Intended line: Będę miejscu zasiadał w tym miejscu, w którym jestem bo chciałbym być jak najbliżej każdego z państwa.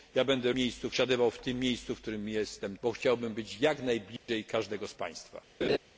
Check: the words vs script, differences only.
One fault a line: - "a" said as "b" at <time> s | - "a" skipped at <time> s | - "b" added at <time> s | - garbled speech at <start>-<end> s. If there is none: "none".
none